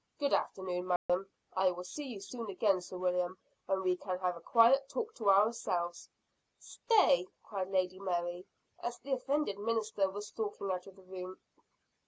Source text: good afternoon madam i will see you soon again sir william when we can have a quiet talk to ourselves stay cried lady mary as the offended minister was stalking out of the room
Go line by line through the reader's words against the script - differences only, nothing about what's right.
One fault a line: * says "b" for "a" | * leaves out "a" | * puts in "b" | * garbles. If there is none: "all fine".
all fine